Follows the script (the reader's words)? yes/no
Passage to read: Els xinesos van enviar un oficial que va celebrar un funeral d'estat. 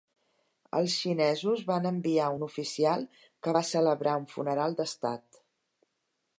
yes